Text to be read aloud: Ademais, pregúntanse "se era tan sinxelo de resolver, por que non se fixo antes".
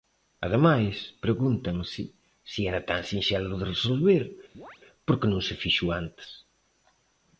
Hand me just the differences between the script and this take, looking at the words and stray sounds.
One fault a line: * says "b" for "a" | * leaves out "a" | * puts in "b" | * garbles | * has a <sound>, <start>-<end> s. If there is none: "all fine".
* has a chirp, 4.5-4.8 s